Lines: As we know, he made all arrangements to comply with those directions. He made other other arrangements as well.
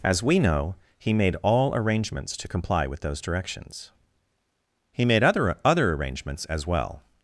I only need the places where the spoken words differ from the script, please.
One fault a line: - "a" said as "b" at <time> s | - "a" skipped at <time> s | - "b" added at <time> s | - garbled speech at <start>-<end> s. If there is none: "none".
none